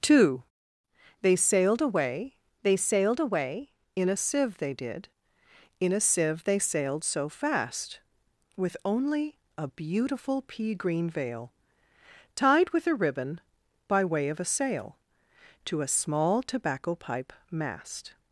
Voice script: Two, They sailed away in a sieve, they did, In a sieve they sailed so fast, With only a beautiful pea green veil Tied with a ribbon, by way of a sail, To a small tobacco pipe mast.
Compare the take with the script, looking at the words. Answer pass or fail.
fail